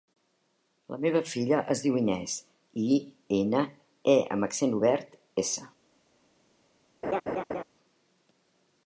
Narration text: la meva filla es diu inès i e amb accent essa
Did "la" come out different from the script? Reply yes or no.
no